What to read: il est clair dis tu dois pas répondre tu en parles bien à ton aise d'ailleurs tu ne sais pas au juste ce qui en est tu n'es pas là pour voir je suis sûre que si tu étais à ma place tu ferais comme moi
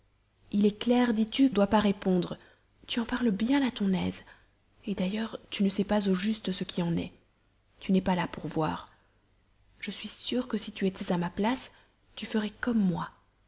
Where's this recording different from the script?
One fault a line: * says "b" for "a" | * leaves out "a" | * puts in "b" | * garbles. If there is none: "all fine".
all fine